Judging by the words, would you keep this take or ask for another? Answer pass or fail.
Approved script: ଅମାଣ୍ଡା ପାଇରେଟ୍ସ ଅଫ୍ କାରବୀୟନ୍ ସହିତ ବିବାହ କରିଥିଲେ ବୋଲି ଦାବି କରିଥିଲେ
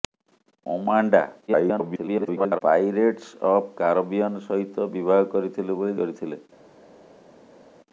fail